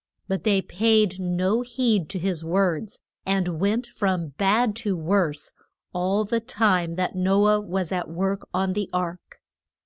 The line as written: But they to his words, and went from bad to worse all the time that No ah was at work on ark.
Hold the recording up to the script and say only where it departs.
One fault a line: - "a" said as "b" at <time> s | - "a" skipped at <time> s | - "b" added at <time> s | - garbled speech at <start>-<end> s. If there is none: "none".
- "paid no heed" added at 0.6 s
- "the" added at 8.7 s